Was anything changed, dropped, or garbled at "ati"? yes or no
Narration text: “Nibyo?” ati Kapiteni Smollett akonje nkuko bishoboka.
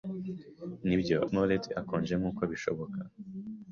yes